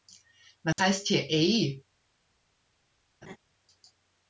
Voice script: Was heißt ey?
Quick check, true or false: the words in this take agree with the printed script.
false